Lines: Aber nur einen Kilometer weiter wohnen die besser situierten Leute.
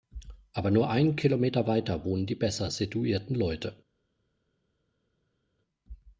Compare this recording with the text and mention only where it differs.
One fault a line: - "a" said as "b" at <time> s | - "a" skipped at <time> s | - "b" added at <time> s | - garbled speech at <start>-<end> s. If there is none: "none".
none